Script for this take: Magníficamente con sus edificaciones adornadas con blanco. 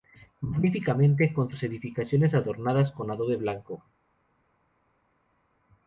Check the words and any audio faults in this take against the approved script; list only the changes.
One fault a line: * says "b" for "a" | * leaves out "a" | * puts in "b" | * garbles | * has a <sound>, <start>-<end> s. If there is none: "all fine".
* puts in "adobe"